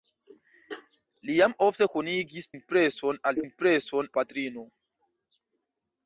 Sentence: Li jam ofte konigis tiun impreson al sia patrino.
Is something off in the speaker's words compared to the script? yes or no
yes